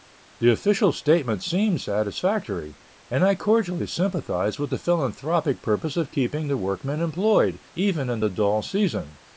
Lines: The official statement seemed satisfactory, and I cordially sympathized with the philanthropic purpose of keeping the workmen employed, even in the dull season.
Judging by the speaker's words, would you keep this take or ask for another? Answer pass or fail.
pass